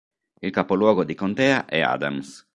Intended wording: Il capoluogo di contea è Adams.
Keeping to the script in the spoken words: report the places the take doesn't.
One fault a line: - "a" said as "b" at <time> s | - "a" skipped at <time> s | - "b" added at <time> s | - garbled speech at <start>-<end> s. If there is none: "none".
none